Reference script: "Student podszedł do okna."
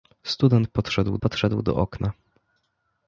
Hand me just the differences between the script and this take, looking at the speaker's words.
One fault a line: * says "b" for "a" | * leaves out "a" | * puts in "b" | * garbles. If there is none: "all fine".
* puts in "podszedł"